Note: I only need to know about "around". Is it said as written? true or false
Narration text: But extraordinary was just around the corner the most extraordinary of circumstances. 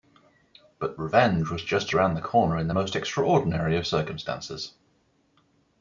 true